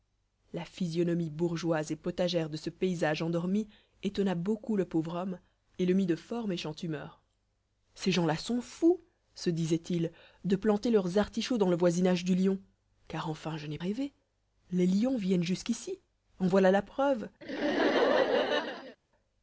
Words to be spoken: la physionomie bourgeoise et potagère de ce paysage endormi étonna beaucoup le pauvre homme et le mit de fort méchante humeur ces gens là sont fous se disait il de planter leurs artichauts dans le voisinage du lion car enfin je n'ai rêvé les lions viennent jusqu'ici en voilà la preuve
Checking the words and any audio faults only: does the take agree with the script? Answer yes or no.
no